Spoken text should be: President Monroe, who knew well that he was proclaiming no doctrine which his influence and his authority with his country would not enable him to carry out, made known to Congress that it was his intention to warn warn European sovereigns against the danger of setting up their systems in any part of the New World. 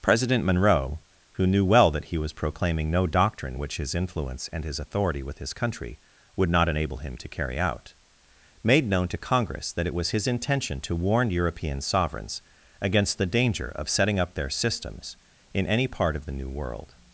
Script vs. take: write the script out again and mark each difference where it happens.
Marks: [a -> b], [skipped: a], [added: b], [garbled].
President Monroe, who knew well that he was proclaiming no doctrine which his influence and his authority with his country would not enable him to carry out, made known to Congress that it was his intention to warn [skipped: warn] European sovereigns against the danger of setting up their systems in any part of the New World.